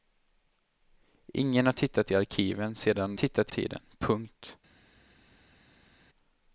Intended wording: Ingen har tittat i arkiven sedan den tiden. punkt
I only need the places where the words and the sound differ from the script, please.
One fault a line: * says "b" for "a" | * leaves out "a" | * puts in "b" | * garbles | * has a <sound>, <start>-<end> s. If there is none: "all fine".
* says "tittat" for "den"